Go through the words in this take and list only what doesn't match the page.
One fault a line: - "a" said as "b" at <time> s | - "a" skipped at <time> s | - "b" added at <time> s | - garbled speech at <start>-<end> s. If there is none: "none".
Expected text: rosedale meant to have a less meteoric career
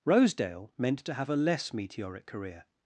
none